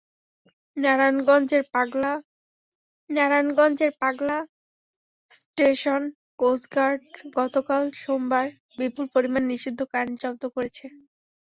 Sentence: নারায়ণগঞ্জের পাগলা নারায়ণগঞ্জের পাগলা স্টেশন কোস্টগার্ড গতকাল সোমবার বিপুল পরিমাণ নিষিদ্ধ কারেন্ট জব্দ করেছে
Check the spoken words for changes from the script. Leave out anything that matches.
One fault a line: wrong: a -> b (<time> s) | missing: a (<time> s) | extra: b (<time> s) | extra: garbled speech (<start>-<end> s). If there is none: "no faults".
no faults